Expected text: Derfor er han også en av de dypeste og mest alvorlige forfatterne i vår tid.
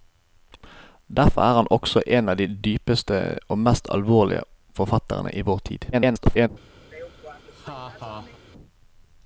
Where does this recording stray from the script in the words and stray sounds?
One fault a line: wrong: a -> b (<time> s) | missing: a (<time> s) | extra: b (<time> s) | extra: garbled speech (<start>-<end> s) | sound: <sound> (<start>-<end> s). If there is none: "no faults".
extra: garbled speech (5.9-6.5 s)
sound: laugh (6.8-8.4 s)